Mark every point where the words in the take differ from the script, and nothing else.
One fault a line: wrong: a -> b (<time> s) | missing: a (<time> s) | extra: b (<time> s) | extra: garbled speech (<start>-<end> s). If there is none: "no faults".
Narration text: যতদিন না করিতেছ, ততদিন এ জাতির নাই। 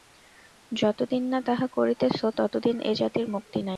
extra: তাহা (1.5 s)
extra: মুক্তি (3.3 s)